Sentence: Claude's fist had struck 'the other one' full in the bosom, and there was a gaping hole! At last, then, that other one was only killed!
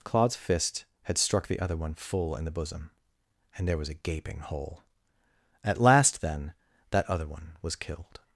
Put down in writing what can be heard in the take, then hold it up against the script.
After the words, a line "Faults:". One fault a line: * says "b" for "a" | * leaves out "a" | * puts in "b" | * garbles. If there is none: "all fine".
Claude's fist had struck 'the other one' full in the bosom, and there was a gaping hole! At last, then, that other one was killed!
Faults:
* leaves out "only"